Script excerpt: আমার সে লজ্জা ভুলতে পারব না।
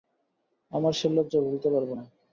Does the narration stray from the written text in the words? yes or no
no